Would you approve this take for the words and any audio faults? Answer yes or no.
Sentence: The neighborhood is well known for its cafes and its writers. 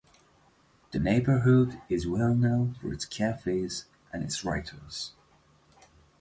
yes